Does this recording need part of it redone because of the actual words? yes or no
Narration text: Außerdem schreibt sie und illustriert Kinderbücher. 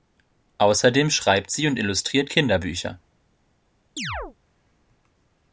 no